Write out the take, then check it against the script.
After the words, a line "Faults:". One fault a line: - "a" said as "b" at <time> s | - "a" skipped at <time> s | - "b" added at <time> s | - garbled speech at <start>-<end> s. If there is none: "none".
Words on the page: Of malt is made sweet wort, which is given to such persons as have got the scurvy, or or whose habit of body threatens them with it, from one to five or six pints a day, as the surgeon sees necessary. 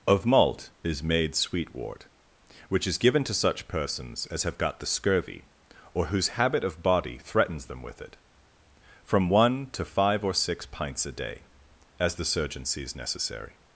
Of malt is made sweet wort, which is given to such persons as have got the scurvy, or whose habit of body threatens them with it, from one to five or six pints a day, as the surgeon sees necessary.
Faults:
- "or" skipped at 6.1 s